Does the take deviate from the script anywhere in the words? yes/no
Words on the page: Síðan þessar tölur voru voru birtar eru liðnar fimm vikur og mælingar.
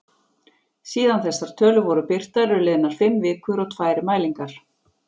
yes